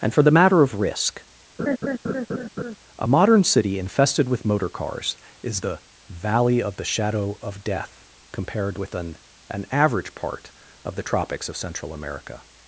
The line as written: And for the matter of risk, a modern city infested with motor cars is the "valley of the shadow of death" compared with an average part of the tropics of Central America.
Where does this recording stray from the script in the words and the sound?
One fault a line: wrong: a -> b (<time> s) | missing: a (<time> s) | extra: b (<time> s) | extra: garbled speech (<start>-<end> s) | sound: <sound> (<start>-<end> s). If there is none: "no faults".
sound: laugh (1.6-2.8 s)
extra: an (9.5 s)